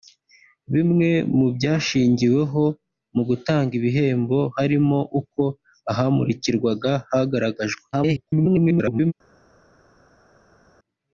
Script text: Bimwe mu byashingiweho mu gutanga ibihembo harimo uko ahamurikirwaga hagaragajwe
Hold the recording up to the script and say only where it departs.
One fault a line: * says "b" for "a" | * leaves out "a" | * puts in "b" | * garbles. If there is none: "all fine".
* garbles